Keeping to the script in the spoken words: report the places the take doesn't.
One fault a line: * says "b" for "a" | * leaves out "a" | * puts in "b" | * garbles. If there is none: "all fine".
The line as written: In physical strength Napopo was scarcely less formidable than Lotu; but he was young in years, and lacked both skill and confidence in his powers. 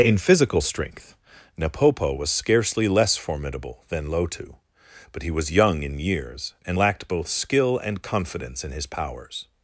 all fine